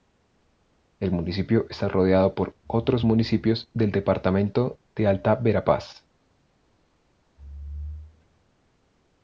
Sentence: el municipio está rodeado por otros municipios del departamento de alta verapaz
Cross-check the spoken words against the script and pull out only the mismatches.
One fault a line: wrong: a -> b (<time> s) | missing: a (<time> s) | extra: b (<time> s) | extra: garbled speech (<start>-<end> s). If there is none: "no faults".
no faults